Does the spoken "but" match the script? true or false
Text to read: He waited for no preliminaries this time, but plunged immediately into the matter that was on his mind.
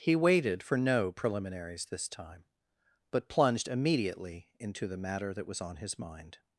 true